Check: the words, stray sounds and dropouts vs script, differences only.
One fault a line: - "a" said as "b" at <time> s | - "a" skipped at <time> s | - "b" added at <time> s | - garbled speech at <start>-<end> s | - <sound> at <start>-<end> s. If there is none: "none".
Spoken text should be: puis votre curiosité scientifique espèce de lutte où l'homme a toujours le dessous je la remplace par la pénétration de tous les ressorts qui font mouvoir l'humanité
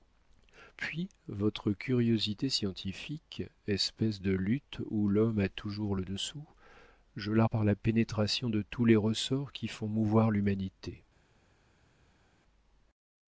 - "remplace" skipped at 7.4 s